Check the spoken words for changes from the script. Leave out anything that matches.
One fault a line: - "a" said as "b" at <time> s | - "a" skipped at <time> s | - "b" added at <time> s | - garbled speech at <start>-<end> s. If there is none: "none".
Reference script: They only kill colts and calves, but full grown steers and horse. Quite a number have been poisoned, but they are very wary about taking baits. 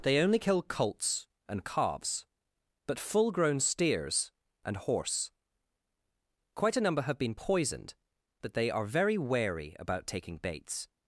none